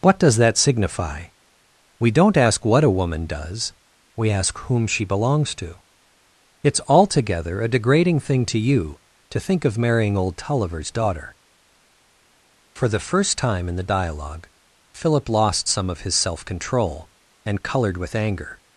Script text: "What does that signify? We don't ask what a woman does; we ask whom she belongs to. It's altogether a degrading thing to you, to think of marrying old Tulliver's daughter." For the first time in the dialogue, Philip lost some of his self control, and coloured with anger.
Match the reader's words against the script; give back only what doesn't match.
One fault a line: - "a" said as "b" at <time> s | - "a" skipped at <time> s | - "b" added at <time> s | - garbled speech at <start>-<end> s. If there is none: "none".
none